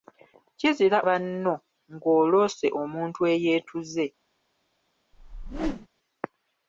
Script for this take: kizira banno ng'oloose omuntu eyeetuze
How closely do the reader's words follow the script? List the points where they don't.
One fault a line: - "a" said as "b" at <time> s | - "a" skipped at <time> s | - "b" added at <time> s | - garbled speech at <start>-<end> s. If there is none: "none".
none